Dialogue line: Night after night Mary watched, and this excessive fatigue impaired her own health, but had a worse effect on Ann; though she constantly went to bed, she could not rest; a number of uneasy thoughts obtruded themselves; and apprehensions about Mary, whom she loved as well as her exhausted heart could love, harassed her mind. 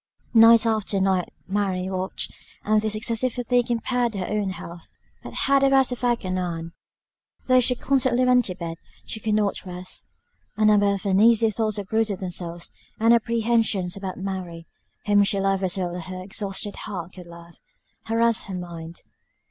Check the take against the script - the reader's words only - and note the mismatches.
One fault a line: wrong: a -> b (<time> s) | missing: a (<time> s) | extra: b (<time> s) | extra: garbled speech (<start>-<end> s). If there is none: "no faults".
no faults